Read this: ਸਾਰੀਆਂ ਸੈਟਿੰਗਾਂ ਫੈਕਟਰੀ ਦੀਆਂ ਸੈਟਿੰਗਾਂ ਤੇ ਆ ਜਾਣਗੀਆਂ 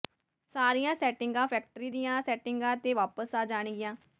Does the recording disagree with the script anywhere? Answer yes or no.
yes